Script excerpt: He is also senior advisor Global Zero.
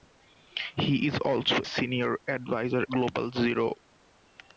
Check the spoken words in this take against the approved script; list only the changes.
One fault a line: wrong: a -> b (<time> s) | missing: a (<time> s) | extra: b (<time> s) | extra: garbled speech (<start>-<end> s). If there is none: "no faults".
no faults